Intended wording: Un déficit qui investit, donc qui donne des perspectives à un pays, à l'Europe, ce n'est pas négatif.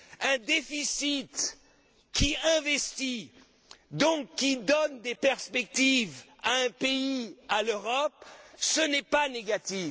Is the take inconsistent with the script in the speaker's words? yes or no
no